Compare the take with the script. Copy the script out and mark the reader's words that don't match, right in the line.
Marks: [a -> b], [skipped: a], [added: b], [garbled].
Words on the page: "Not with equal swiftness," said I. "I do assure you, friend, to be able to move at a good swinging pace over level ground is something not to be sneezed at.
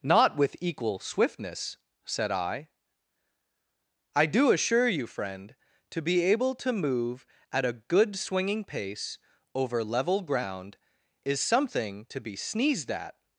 "Not with equal swiftness," said I. "I do assure you, friend, to be able to move at a good swinging pace over level ground is something [skipped: not] to be sneezed at.